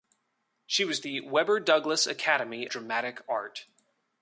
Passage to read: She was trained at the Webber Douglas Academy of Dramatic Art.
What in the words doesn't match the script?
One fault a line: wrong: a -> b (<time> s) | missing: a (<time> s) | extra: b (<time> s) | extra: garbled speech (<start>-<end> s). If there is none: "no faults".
missing: trained at (1.0 s)
missing: of (2.7 s)